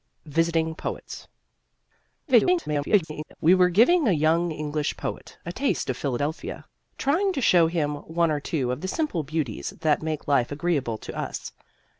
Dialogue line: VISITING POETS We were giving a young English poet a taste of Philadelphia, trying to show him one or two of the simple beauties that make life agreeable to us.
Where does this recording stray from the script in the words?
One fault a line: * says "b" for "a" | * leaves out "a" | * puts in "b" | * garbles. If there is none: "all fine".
* garbles